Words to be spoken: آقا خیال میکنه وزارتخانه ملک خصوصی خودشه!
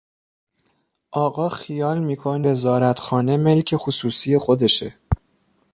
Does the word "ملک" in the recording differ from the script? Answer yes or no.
no